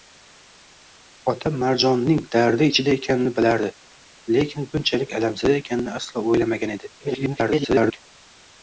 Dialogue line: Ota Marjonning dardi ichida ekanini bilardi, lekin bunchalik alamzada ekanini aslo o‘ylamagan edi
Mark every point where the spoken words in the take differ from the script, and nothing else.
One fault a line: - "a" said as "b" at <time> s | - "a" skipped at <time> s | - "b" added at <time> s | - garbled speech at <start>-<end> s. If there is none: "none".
- garbled speech at 7.0-8.0 s